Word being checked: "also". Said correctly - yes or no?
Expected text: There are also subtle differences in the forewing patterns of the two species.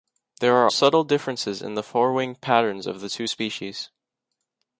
no